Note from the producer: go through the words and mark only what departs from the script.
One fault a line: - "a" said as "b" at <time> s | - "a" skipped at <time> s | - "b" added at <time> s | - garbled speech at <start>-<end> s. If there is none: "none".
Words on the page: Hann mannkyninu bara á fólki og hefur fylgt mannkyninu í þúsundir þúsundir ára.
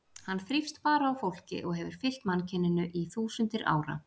- "mannkyninu" said as "þrífst" at 0.5 s
- "þúsundir" skipped at 3.7 s